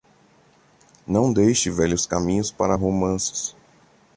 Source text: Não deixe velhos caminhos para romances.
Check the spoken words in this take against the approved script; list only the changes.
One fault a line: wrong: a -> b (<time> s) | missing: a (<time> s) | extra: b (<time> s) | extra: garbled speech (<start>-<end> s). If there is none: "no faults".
no faults